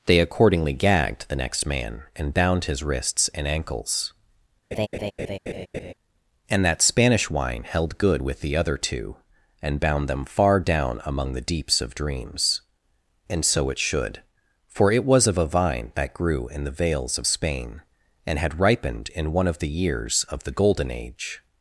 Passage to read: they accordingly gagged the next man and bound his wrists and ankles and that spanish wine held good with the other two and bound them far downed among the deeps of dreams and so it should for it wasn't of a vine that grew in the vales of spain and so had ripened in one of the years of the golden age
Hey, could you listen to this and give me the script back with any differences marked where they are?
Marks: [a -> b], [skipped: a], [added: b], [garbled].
they accordingly gagged the next man and bound his wrists and ankles and that spanish wine held good with the other two and bound them far [downed -> down] among the deeps of dreams and so it should for it [wasn't -> was] of a vine that grew in the vales of spain and [skipped: so] had ripened in one of the years of the golden age